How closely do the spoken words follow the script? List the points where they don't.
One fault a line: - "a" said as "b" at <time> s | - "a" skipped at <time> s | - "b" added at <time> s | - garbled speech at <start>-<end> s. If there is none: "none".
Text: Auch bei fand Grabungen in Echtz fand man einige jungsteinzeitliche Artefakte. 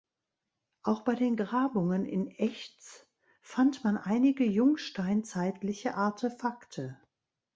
- "fand" said as "den" at 1.1 s